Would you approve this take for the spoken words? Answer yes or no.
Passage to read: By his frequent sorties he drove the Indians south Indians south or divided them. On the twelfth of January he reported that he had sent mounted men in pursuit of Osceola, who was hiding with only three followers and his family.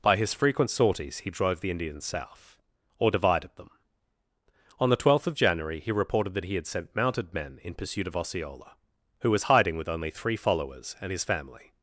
no